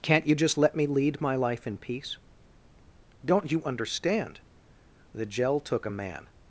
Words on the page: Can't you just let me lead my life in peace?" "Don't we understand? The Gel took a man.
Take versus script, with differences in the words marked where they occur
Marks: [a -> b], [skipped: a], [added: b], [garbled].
Can't you just let me lead my life in peace?" "Don't [we -> you] understand? The Gel took a man.